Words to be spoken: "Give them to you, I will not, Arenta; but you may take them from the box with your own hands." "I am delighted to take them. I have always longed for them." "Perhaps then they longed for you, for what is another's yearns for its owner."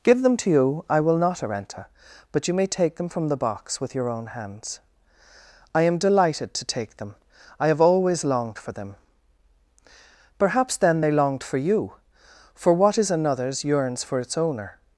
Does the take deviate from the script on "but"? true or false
false